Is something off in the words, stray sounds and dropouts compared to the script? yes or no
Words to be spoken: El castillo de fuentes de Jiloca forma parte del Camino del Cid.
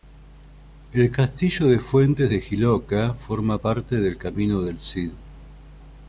no